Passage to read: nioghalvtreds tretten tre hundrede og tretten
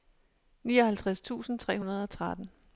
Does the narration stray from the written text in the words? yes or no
yes